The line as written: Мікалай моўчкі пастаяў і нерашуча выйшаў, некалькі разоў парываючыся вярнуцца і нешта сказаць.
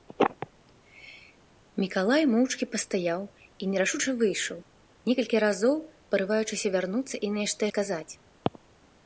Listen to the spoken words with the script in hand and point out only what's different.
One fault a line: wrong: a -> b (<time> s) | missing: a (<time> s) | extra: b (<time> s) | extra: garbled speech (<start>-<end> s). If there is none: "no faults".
no faults